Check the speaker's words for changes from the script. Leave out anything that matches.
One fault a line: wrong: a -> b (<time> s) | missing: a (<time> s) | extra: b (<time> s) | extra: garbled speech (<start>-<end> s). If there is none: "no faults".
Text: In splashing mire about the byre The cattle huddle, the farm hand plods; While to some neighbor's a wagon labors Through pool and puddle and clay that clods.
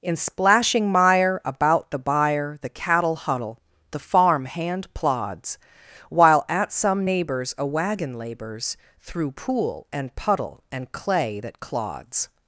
wrong: to -> at (6.5 s)